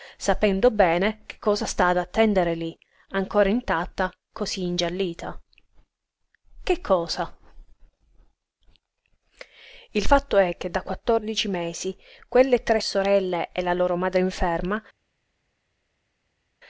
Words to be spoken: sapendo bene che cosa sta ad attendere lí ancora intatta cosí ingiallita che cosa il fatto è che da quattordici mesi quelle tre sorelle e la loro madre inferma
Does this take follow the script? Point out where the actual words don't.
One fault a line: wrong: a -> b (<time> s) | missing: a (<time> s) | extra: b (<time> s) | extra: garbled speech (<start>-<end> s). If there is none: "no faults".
no faults